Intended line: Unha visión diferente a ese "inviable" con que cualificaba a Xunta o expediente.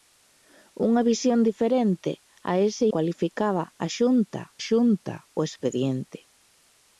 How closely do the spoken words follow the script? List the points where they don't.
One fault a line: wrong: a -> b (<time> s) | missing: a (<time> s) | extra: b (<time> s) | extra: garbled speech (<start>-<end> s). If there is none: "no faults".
missing: inviable con que (2.9 s)
extra: Xunta (4.7 s)